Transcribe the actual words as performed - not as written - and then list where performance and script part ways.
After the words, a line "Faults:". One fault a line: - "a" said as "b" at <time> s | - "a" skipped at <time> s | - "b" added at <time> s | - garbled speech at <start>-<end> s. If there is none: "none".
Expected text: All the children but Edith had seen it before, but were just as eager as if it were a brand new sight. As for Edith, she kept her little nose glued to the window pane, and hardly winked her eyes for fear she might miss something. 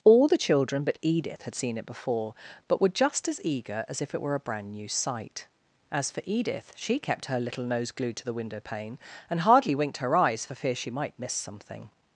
All the children but Edith had seen it before, but were just as eager as if it were a brand new sight. As for Edith, she kept her little nose glued to the window pane, and hardly winked her eyes for fear she might miss something.
Faults:
none